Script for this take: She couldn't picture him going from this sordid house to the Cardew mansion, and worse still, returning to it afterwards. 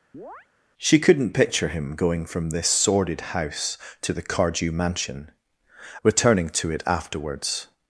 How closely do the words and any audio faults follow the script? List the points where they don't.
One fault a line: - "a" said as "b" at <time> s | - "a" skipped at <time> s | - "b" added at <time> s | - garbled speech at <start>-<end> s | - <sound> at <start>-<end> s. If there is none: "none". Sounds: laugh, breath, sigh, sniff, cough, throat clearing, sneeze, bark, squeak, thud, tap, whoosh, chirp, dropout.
- chirp at 0.1-0.5 s
- "and worse still" skipped at 5.3 s